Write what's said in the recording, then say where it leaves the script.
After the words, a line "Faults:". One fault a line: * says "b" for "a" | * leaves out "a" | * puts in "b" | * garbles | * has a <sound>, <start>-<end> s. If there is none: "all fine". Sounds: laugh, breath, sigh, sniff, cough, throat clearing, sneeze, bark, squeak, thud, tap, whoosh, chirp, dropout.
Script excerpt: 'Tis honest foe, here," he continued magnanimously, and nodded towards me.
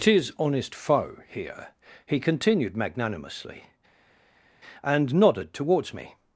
'Tis honest foe, here," he continued magnanimously, and nodded towards me.
Faults:
all fine